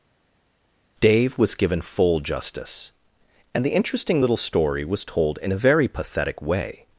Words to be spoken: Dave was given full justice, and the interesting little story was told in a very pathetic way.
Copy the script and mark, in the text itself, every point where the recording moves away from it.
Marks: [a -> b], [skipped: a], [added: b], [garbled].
Dave was given full justice, and the interesting little story was told in a very pathetic way.